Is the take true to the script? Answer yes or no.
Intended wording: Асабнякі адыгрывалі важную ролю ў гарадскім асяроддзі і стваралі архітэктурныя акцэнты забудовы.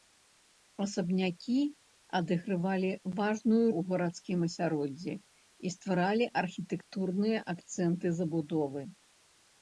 no